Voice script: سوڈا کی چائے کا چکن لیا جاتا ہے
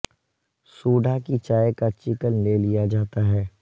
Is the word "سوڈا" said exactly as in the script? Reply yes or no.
yes